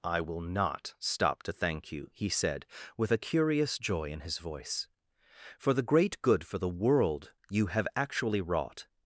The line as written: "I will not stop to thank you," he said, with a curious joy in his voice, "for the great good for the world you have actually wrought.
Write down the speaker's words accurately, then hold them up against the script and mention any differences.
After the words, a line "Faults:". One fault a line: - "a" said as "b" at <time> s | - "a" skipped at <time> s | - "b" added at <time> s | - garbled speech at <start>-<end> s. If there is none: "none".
"I will not stop to thank you," he said, with a curious joy in his voice, "for the great good for the world you have actually wrought.
Faults:
none